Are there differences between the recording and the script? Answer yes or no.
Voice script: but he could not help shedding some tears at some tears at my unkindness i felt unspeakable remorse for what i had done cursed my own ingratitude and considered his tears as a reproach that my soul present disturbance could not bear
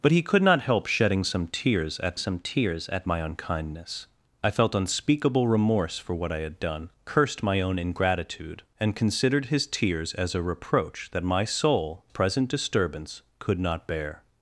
no